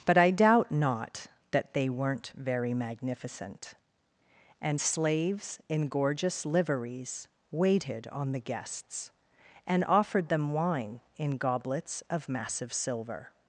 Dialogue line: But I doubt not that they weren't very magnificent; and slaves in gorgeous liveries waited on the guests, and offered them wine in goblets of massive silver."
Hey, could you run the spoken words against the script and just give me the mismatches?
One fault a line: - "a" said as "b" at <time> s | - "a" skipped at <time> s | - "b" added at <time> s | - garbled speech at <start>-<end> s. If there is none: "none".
none